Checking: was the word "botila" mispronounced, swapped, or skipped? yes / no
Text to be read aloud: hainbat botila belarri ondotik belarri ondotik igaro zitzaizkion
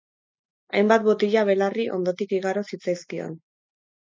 no